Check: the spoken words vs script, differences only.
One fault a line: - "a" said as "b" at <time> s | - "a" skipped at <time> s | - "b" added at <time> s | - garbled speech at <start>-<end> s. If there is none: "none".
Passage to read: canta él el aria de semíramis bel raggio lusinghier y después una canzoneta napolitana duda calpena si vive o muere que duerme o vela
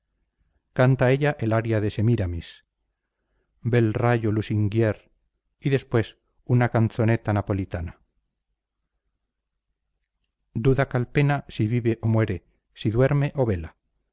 - "él" said as "ella" at 1.1 s
- "que" said as "si" at 12.7 s